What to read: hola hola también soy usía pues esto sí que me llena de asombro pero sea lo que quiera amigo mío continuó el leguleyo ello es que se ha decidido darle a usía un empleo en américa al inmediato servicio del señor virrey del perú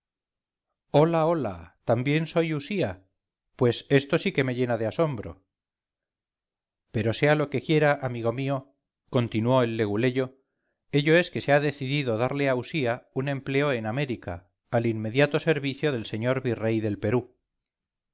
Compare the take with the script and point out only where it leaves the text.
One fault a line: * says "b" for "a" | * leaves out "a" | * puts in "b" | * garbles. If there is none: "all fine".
all fine